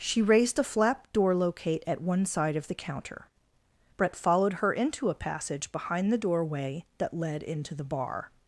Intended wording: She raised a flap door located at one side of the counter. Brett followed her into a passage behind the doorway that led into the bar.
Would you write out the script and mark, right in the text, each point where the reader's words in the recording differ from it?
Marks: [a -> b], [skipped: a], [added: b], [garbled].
She raised a flap door [located -> locate] at one side of the counter. Brett followed her into a passage behind the doorway that led into the bar.